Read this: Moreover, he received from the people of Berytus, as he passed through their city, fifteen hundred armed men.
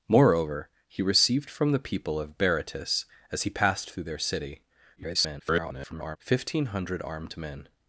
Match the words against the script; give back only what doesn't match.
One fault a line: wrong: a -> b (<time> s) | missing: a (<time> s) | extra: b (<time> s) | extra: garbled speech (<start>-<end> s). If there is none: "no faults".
extra: garbled speech (5.0-6.2 s)